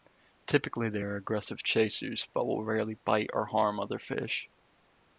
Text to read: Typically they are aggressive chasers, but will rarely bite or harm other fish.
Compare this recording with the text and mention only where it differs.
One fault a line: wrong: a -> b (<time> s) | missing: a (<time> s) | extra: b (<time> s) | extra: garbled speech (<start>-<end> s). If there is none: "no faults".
no faults